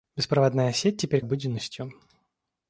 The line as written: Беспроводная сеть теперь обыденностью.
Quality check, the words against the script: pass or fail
pass